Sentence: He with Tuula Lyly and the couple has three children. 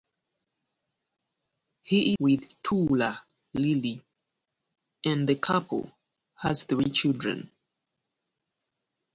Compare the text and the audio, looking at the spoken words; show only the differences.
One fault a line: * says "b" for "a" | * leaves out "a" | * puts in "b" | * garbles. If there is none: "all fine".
all fine